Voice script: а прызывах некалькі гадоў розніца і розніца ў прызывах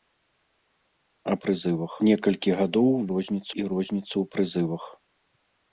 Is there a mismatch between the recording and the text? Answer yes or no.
no